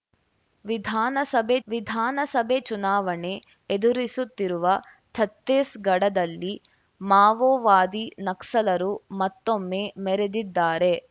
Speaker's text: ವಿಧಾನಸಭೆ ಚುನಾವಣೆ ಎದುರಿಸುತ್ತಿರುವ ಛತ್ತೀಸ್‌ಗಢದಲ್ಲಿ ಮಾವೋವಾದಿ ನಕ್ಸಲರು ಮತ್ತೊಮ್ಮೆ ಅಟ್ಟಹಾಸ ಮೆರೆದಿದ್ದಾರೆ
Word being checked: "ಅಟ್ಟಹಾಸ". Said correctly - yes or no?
no